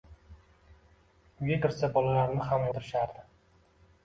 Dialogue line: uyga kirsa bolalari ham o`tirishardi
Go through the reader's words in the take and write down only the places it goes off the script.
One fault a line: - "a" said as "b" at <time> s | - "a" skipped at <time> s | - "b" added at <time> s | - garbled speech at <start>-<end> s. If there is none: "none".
none